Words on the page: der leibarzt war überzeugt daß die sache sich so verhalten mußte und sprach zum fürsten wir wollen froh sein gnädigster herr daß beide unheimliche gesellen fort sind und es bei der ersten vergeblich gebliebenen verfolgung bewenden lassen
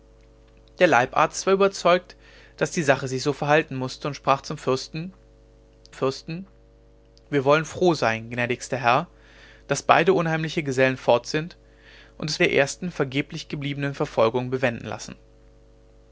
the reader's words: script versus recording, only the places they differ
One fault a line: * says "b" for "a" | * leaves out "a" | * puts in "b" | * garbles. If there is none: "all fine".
* puts in "fürsten"
* leaves out "bei"